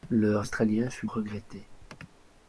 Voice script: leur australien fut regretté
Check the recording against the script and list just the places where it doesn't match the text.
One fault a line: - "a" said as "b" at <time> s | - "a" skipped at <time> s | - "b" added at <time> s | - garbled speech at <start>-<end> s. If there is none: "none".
none